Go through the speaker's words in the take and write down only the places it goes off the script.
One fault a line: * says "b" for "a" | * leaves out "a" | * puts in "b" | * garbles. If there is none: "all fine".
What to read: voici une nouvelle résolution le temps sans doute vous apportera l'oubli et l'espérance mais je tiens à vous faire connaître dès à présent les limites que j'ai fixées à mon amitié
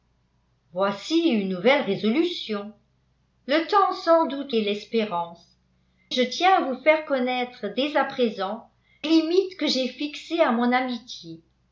* leaves out "vous apportera l'oubli"
* leaves out "mais"
* leaves out "les"